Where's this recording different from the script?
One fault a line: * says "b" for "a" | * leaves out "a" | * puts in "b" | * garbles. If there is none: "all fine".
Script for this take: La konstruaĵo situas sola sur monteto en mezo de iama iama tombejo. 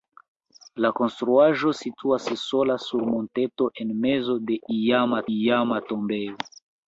all fine